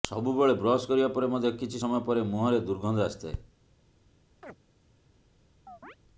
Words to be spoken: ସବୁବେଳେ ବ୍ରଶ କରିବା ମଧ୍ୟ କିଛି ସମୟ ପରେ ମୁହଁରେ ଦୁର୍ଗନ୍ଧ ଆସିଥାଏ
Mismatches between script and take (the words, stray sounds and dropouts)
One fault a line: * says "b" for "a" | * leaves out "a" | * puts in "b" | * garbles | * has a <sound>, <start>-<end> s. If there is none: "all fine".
* puts in "ପରେ"
* has a chirp, 4.4-4.6 s
* has a chirp, 5.7-6.0 s